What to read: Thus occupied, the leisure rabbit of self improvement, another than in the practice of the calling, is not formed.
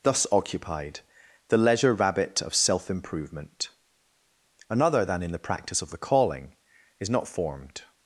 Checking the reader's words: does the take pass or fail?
pass